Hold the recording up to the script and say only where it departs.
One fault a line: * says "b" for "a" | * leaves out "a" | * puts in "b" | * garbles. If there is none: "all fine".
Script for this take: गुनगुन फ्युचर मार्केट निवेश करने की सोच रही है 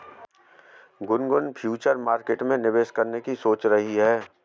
* puts in "में"